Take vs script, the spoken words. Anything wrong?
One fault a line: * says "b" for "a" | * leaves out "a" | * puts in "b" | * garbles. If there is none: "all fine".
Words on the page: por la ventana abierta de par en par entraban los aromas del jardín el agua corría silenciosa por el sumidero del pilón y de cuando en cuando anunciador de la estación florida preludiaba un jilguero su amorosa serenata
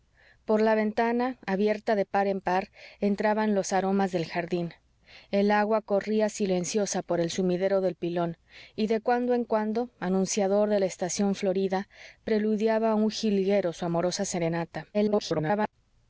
* garbles